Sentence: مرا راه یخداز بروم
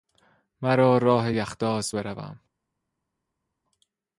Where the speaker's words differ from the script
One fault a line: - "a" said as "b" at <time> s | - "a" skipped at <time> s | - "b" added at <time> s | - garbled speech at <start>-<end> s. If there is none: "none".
none